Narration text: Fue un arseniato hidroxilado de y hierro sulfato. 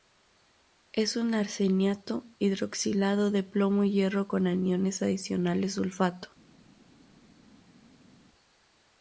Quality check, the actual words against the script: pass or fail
fail